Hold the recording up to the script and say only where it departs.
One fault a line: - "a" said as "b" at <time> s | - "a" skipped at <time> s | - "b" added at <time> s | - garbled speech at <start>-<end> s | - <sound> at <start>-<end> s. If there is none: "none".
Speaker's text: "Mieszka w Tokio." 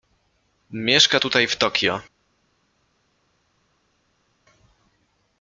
- "tutaj" added at 1.2 s